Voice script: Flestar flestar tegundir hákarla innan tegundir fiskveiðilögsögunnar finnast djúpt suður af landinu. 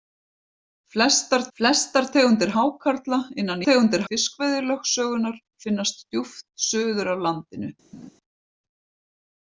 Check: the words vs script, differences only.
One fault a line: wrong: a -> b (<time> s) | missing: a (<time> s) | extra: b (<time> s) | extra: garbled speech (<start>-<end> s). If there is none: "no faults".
no faults